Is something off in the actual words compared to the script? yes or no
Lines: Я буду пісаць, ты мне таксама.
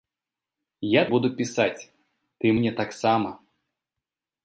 no